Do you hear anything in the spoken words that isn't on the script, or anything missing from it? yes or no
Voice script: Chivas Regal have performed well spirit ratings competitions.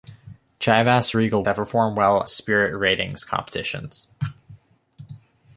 no